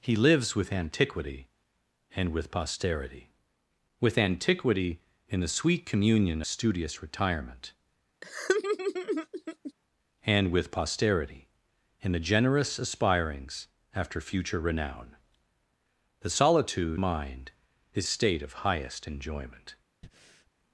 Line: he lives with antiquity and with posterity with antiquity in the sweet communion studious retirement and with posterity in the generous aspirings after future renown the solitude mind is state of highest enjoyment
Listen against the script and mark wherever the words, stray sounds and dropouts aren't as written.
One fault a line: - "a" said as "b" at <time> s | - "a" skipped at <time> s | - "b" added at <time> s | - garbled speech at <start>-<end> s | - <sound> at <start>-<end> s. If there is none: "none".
- laugh at 8.2-9.7 s
- breath at 20.0-20.5 s